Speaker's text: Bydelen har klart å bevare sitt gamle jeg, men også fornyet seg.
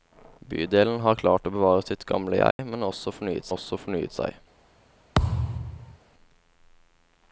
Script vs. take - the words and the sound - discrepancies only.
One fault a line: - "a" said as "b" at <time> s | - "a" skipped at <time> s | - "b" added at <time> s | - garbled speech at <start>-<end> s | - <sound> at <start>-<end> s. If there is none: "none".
- dropout at 2.5-2.6 s
- "også fornyet" added at 3.5 s
- thud at 5.1-6.0 s